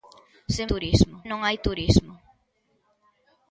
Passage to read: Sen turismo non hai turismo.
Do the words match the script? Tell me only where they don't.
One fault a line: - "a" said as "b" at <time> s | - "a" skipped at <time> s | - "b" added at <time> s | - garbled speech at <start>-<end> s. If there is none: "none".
none